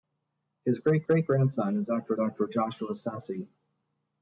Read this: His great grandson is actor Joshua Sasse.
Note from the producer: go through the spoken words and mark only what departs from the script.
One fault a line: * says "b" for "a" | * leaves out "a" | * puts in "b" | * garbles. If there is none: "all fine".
* puts in "great"
* puts in "actor"